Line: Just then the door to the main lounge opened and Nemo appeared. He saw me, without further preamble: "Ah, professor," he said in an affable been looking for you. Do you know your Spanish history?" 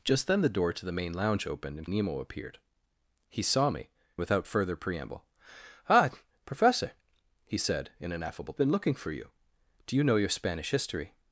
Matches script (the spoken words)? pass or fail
pass